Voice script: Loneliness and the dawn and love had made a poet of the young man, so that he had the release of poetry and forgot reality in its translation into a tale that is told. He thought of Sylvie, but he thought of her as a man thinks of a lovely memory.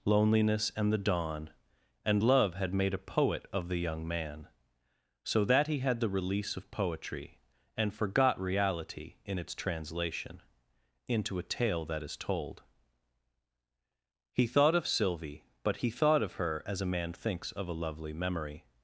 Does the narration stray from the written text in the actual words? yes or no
no